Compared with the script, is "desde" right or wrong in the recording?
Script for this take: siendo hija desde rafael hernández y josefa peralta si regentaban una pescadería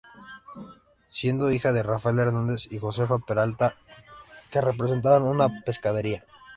wrong